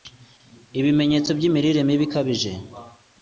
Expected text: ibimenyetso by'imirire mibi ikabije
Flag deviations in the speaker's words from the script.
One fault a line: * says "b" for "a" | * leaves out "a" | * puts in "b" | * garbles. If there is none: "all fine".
all fine